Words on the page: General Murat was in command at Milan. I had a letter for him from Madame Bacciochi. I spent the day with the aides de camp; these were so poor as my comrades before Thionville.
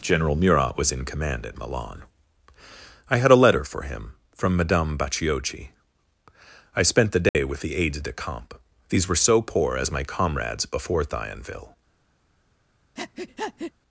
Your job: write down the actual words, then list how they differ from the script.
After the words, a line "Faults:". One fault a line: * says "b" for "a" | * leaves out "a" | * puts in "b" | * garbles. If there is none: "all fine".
General Murat was in command at Milan. I had a letter for him from Madame Bacciochi. I spent the day with the aides de camp; these were so poor as my comrades before Thionville.
Faults:
all fine